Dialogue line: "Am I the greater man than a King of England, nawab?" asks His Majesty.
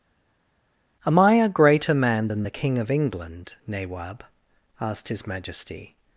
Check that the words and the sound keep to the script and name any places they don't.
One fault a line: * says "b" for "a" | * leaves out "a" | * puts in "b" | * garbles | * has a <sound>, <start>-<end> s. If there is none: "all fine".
* says "a" for "the"
* says "the" for "a"
* says "asked" for "asks"